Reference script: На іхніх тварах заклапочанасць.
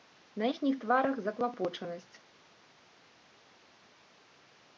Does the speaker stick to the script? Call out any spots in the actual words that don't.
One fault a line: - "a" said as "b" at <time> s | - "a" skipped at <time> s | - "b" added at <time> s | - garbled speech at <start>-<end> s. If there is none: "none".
none